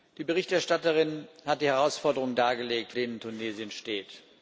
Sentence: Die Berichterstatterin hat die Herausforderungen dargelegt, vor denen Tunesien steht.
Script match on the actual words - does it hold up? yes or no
no